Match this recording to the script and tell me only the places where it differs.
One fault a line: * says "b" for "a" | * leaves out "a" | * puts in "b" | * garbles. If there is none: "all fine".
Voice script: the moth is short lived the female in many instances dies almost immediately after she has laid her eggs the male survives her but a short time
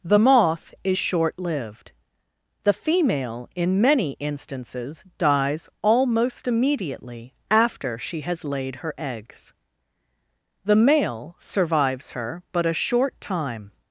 all fine